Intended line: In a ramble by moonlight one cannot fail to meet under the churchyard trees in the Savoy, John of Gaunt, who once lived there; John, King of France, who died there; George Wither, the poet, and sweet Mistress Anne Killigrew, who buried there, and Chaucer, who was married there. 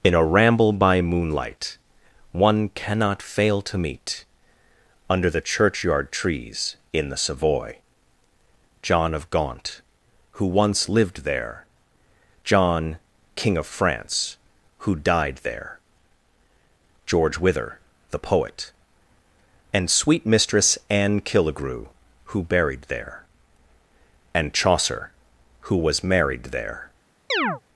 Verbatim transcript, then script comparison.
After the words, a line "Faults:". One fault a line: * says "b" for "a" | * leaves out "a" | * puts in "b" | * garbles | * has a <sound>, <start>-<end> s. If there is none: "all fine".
In a ramble by moonlight one cannot fail to meet under the churchyard trees in the Savoy, John of Gaunt, who once lived there; John, King of France, who died there; George Wither, the poet, and sweet Mistress Anne Killigrew, who buried there, and Chaucer, who was married there.
Faults:
* has a chirp, 27.3-27.6 s